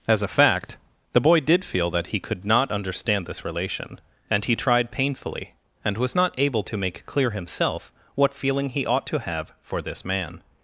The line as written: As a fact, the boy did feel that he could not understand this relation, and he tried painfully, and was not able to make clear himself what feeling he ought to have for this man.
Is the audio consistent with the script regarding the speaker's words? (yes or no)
yes